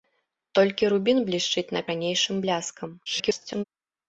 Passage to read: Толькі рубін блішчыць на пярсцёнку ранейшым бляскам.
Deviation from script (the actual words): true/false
true